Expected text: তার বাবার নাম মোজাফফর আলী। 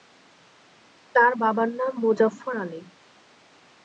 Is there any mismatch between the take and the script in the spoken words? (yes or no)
no